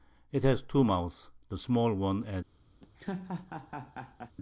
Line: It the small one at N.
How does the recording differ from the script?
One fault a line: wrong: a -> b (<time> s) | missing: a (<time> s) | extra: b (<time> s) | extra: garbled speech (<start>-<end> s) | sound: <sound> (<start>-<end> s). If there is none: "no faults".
extra: has two Mouths (0.4 s)
sound: laugh (2.8-4.3 s)